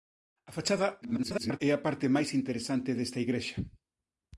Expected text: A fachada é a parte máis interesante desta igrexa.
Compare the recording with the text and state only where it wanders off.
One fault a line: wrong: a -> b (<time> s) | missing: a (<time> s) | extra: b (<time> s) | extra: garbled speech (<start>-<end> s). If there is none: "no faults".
extra: garbled speech (1.0-1.6 s)